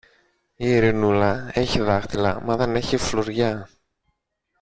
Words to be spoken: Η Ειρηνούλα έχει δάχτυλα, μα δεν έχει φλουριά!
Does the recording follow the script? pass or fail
pass